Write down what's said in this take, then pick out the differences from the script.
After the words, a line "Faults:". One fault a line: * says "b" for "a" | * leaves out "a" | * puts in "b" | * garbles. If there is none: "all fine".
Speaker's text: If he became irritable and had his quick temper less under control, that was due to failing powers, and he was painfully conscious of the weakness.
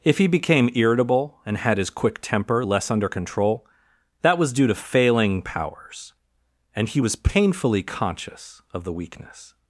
If he became irritable and had his quick temper less under control, that was due to failing powers, and he was painfully conscious of the weakness.
Faults:
all fine